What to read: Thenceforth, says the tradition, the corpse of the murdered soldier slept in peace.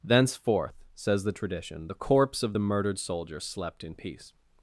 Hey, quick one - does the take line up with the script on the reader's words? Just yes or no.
yes